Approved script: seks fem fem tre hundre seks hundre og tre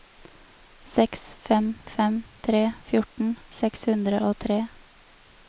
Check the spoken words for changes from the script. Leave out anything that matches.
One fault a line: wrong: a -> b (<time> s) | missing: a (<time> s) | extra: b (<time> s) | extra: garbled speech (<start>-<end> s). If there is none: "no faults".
wrong: hundre -> fjorten (2.9 s)